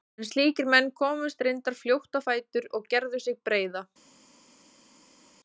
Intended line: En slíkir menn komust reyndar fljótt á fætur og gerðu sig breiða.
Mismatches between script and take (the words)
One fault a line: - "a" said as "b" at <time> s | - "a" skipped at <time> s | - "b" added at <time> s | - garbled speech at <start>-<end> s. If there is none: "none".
none